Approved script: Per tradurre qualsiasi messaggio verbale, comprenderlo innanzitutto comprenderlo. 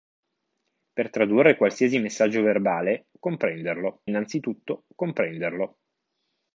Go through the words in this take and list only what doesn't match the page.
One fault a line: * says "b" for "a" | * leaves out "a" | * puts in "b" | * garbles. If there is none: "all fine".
all fine